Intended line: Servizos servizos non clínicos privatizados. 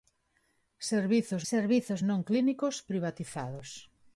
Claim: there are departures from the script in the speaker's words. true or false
false